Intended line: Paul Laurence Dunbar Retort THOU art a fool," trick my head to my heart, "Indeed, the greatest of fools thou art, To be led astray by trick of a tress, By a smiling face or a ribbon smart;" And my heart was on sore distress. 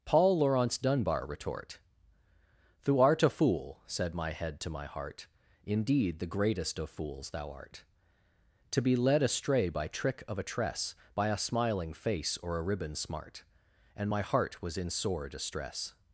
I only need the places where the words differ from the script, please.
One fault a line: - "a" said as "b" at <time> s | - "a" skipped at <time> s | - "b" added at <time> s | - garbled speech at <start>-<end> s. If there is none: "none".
- "trick" said as "said" at 3.9 s
- "on" said as "in" at 14.8 s